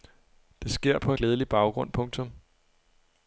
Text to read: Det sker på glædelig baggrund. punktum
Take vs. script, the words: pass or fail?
pass